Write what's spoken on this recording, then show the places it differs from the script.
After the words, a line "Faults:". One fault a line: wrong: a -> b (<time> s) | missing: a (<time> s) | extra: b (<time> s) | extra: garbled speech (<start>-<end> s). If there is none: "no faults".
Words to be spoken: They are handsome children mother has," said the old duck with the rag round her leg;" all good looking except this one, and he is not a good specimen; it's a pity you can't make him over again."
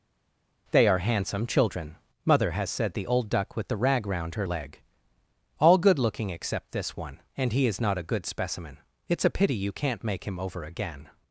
They are handsome children mother has," said the old duck with the rag round her leg;" all good looking except this one, and he is not a good specimen; it's a pity you can't make him over again."
Faults:
no faults